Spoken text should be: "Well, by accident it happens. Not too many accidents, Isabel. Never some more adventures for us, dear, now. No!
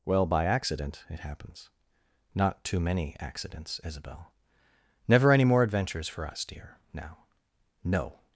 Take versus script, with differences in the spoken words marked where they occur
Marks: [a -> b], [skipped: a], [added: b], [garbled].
"Well, by accident it happens. Not too many accidents, Isabel. Never [some -> any] more adventures for us, dear, now. No!